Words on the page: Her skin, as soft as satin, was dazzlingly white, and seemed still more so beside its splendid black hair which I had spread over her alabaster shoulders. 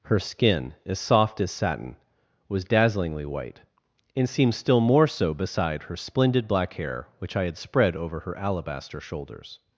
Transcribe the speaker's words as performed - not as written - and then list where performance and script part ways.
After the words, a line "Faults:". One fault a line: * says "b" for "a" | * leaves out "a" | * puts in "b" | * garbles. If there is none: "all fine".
Her skin, as soft as satin, was dazzlingly white, and seemed still more so beside her splendid black hair which I had spread over her alabaster shoulders.
Faults:
* says "her" for "its"